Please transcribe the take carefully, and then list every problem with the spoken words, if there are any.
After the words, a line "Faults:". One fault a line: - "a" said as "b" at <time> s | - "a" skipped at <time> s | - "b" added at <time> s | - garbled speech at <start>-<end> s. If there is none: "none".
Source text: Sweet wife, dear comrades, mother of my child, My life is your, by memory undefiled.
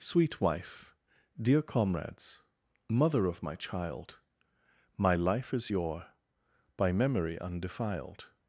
Sweet wife, dear comrades, mother of my child, My life is your, by memory undefiled.
Faults:
none